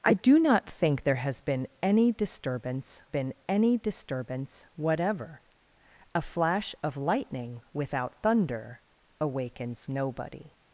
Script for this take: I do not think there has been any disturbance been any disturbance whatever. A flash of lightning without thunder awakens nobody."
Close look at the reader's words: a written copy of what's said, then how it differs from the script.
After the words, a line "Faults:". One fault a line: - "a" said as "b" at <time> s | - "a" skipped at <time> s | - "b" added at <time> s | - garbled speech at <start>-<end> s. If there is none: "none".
I do not think there has been any disturbance been any disturbance whatever. A flash of lightning without thunder awakens nobody."
Faults:
none